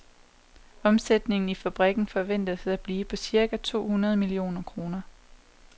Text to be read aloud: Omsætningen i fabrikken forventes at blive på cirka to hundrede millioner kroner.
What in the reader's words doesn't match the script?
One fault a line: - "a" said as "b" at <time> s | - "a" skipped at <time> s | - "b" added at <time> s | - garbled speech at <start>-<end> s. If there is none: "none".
none